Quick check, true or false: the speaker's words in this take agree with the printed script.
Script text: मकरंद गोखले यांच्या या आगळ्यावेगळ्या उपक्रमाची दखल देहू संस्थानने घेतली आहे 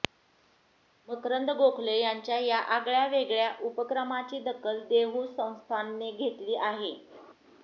true